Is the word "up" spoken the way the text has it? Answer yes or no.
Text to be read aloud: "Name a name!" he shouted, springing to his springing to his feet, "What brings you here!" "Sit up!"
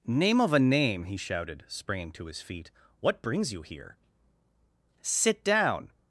no